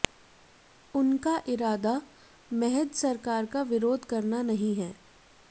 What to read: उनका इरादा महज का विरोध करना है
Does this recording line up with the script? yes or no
no